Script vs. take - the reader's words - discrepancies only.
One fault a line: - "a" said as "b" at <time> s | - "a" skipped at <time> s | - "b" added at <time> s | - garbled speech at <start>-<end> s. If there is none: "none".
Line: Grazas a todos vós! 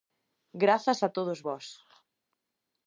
none